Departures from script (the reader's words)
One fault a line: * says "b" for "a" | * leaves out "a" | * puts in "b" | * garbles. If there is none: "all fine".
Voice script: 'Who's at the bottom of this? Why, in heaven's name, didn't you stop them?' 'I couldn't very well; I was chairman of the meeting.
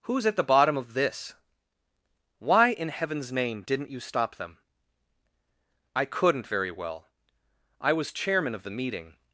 all fine